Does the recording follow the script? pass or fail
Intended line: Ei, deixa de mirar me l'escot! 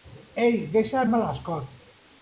fail